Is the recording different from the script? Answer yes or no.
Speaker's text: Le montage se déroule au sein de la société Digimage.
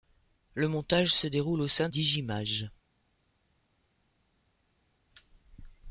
yes